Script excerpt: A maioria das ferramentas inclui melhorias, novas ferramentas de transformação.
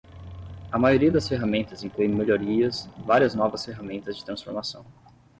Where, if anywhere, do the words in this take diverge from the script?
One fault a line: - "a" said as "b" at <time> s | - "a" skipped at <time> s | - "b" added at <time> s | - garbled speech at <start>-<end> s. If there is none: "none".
- "várias" added at 3.0 s